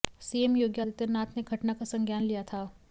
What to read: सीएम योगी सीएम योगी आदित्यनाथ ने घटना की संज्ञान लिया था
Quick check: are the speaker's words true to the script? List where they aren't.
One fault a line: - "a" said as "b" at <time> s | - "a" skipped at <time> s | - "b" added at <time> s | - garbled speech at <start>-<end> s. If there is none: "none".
- "सीएम योगी" skipped at 0.8 s
- "की" said as "का" at 1.7 s